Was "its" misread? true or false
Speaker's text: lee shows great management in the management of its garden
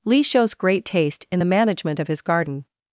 true